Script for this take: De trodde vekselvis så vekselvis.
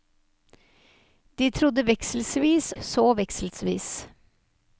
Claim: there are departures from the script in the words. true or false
false